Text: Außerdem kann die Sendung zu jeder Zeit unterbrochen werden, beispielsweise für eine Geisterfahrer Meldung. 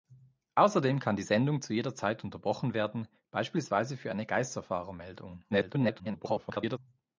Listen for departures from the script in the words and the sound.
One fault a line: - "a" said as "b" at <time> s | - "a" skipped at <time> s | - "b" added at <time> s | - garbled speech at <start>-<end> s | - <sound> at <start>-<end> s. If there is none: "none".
- garbled speech at 5.5-6.8 s